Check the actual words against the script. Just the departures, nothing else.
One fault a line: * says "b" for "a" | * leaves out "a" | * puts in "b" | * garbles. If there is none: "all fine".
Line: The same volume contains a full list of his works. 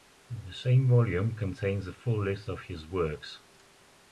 all fine